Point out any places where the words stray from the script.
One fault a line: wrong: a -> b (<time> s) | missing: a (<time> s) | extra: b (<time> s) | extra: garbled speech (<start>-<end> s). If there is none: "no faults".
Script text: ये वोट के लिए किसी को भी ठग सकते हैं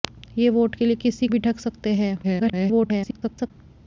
missing: को (1.3 s)
extra: garbled speech (2.2-3.5 s)